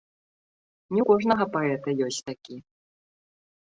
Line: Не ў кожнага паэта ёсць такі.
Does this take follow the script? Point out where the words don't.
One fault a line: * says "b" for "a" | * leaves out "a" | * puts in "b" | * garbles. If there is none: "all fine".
all fine